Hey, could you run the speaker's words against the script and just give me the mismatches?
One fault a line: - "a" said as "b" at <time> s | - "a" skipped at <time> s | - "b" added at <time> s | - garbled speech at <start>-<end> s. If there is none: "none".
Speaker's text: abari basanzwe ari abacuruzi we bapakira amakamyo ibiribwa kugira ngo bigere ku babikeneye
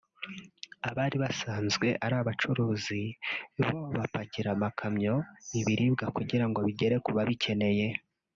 - "we" said as "bo" at 3.7 s